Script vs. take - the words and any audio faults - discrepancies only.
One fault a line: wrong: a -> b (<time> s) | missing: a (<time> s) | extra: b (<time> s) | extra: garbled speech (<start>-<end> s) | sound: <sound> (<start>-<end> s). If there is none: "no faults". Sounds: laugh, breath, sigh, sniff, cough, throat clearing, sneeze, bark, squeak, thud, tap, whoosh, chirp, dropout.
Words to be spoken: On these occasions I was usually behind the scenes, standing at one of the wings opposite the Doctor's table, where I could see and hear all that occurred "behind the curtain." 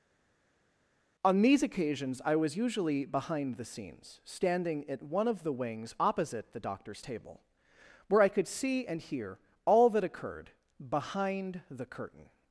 no faults